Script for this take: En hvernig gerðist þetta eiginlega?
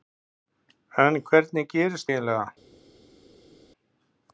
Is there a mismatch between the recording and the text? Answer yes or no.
yes